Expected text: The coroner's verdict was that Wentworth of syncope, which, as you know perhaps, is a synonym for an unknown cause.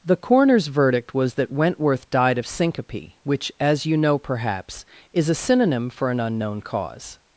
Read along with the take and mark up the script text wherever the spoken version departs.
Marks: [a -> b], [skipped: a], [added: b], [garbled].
The coroner's verdict was that Wentworth [added: died] of syncope, which, as you know perhaps, is a synonym for an unknown cause.